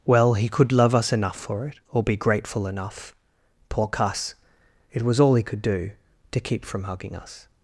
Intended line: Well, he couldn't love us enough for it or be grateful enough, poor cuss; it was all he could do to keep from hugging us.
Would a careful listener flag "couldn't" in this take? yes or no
yes